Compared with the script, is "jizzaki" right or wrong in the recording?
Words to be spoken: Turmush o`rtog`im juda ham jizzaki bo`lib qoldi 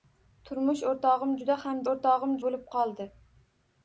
wrong